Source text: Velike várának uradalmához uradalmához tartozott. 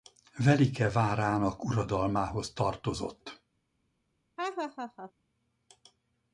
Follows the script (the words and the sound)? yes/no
no